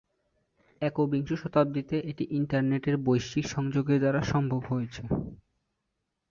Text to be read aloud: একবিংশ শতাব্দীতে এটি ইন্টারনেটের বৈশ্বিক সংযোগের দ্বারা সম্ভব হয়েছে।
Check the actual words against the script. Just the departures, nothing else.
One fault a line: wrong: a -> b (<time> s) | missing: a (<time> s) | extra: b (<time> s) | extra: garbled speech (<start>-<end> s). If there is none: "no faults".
no faults